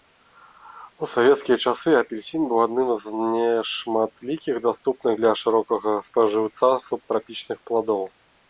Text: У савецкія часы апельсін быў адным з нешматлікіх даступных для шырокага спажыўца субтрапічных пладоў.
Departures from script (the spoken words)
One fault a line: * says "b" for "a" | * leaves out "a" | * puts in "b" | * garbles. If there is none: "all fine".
all fine